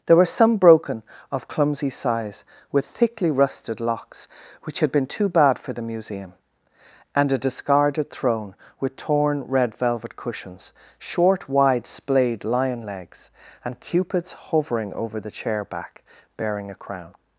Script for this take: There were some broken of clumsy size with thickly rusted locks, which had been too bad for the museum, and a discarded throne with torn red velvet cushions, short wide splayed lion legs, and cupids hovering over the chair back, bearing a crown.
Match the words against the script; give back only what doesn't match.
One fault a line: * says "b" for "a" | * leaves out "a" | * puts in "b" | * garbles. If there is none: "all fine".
all fine